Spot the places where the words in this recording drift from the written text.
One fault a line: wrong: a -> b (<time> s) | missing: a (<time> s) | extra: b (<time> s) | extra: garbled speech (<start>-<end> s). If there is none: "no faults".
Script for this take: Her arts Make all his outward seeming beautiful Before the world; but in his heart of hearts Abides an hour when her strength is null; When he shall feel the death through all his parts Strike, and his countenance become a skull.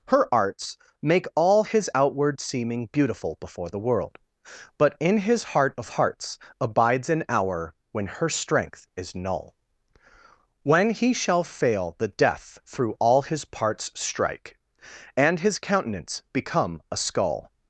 wrong: feel -> fail (11.4 s)